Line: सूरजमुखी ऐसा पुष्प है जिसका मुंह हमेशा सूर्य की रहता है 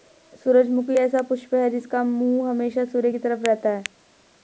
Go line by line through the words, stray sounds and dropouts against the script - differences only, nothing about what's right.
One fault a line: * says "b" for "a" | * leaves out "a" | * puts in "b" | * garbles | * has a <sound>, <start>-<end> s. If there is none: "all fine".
* puts in "तरफ"